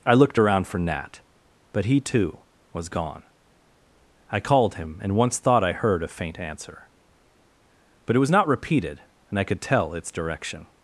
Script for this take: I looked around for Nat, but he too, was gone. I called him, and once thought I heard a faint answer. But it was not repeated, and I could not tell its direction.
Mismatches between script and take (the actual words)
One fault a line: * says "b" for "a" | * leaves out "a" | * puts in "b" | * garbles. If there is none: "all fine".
* leaves out "not"